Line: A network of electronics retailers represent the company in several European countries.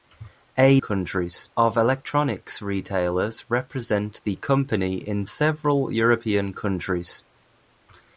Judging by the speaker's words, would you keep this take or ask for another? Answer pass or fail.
fail